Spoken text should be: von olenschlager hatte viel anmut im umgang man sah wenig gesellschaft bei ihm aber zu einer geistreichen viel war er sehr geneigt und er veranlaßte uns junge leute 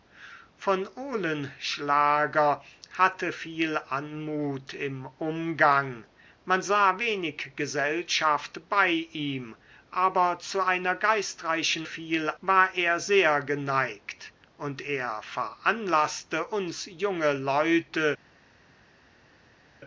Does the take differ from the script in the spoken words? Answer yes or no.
no